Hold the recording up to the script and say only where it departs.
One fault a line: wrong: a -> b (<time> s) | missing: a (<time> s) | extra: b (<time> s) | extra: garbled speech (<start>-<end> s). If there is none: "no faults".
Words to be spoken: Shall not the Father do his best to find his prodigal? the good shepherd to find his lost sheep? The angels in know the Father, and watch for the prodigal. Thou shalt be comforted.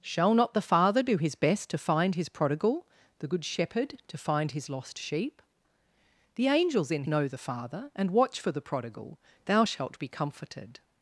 no faults